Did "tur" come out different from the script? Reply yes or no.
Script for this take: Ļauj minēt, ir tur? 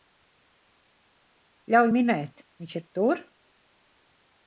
no